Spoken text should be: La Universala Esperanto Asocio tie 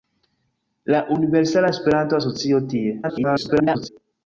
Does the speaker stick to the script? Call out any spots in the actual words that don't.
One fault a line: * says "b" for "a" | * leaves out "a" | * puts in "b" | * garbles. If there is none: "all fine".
* garbles